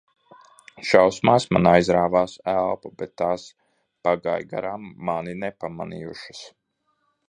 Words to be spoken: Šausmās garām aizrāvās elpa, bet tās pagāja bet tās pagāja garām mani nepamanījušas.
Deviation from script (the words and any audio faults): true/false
true